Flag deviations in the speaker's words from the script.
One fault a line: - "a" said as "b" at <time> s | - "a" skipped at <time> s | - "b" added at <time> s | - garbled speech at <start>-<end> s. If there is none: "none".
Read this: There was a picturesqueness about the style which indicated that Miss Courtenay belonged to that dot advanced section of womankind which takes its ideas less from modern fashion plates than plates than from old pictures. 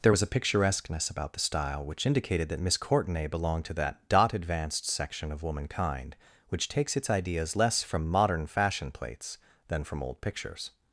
- "plates than" skipped at 9.8 s